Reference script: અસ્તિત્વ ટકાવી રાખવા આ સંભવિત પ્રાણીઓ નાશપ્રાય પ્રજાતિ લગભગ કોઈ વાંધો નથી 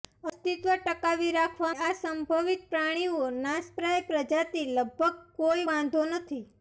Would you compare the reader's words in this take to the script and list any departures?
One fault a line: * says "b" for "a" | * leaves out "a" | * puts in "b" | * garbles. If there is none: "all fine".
all fine